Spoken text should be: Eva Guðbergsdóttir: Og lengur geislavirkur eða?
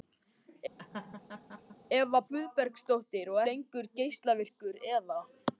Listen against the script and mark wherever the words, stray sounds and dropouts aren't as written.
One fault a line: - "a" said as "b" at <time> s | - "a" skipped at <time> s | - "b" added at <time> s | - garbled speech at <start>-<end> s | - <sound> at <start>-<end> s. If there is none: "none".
- laugh at 0.8-1.8 s